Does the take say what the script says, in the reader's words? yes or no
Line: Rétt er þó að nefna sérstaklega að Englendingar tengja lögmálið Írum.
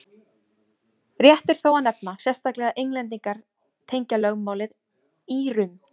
yes